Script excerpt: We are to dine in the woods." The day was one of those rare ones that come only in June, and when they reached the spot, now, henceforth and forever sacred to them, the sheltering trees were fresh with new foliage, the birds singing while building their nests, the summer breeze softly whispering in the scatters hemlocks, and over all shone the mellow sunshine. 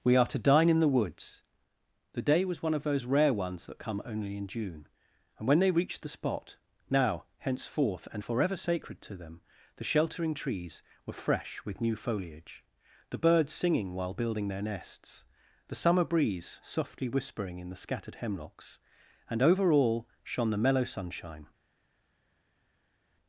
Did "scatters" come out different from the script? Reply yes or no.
yes